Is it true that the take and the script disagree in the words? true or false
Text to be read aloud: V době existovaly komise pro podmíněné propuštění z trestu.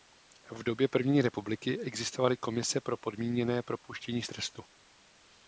true